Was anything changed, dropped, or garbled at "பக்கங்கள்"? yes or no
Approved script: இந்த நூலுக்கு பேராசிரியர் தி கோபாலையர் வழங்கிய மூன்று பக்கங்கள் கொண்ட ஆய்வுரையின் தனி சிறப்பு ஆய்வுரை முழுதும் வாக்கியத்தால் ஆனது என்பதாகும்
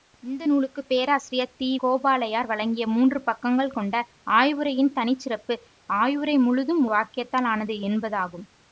no